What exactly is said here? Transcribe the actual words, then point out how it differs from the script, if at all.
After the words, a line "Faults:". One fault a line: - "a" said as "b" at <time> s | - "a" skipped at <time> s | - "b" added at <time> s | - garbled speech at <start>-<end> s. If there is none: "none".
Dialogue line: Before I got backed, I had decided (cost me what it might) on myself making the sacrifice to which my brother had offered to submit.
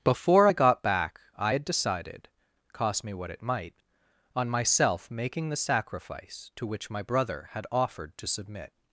Before I got back, I had decided (cost me what it might) on myself making the sacrifice to which my brother had offered to submit.
Faults:
- "backed" said as "back" at 0.8 s